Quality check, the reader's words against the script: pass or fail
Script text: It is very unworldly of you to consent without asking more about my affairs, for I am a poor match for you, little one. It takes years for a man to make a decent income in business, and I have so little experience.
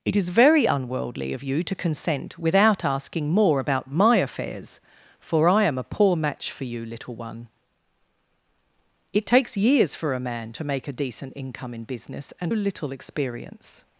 fail